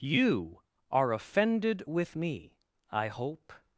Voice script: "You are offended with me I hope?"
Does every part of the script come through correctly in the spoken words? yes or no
yes